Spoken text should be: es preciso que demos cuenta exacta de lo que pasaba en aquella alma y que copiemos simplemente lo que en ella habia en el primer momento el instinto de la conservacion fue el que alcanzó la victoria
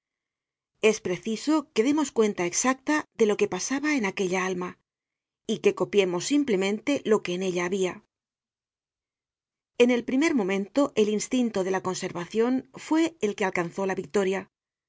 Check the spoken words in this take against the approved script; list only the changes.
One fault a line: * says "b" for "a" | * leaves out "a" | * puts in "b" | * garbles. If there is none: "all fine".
all fine